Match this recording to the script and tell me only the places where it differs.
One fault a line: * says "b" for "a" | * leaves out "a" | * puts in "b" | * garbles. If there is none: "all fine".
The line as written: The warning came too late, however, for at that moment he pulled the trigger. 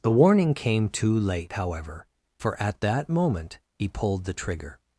all fine